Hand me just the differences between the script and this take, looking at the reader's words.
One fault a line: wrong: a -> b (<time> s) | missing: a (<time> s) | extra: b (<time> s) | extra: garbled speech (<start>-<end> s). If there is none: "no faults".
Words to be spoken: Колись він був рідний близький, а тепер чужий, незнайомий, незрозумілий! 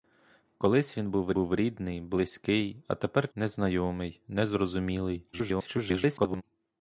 extra: був (1.3 s)
missing: чужий (3.3 s)
extra: garbled speech (5.3-6.4 s)